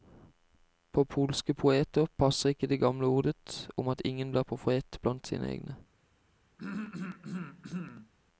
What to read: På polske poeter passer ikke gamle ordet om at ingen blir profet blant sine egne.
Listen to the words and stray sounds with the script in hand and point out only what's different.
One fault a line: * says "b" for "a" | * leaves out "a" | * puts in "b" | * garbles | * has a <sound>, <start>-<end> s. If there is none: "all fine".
* puts in "det"
* has a throat clearing, 6.6-8.1 s